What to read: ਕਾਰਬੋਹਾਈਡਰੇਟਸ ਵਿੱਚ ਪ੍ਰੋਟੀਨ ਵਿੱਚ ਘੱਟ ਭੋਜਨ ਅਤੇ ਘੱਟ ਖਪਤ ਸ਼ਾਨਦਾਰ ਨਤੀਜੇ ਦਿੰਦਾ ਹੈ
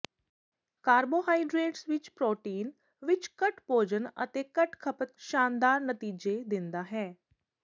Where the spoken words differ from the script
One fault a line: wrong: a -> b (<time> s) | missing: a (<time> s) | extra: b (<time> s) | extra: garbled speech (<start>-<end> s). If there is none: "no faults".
no faults